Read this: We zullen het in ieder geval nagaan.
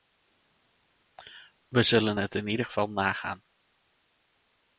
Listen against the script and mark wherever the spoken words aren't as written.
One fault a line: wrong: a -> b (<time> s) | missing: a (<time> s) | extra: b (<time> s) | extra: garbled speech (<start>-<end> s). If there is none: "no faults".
no faults